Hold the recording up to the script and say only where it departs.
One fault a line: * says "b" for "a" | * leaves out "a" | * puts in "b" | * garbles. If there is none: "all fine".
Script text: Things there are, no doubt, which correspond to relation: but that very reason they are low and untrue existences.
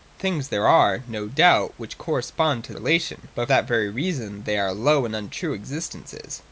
all fine